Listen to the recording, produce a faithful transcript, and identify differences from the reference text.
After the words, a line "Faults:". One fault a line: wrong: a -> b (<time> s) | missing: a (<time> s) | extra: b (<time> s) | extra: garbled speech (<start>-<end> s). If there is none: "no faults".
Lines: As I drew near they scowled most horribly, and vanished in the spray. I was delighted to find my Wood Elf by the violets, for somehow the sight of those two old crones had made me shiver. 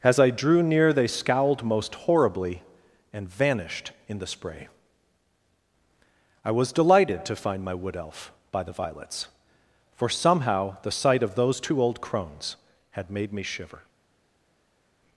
As I drew near they scowled most horribly, and vanished in the spray. I was delighted to find my Wood Elf by the violets, for somehow the sight of those two old crones had made me shiver.
Faults:
no faults